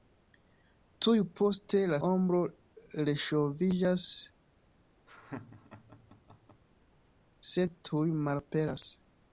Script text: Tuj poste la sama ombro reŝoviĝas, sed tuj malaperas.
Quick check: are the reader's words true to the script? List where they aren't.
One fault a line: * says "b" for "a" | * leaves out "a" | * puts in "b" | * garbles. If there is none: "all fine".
* leaves out "sama"